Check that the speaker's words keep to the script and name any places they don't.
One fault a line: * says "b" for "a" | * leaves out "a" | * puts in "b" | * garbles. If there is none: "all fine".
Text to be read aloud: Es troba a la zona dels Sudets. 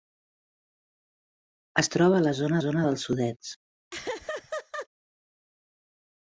* puts in "zona"